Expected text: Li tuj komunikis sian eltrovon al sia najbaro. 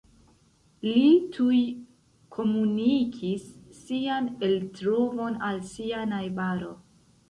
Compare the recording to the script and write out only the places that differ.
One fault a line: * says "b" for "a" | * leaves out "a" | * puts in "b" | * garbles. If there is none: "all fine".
all fine